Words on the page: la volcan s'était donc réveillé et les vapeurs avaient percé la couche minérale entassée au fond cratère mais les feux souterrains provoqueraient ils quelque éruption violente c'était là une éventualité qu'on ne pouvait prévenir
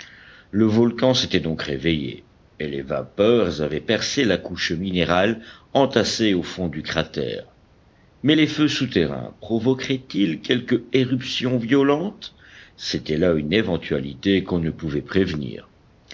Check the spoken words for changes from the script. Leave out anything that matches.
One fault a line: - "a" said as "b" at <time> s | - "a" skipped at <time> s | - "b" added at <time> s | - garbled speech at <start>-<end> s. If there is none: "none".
- "la" said as "le" at 0.5 s
- "du" added at 6.7 s